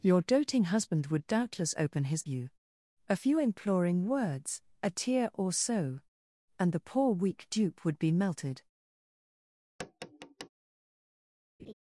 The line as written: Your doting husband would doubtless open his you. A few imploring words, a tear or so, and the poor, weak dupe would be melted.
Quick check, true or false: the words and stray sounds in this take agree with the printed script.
false